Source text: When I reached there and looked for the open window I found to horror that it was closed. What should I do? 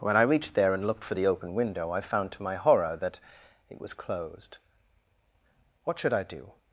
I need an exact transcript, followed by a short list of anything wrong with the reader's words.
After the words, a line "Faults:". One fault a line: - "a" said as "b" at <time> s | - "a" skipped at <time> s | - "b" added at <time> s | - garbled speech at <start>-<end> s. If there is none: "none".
When I reached there and looked for the open window I found to my horror that it was closed. What should I do?
Faults:
- "my" added at 2.4 s